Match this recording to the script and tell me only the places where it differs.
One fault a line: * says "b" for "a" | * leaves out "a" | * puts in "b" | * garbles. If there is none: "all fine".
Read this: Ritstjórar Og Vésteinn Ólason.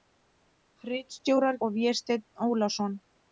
all fine